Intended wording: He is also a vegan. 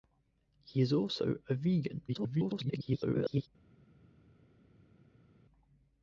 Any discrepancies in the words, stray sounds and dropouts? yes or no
yes